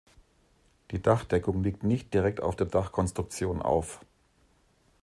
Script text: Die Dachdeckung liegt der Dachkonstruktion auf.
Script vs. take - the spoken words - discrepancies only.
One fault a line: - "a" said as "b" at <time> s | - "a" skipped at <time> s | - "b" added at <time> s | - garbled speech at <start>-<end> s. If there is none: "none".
- "nicht direkt auf" added at 1.8 s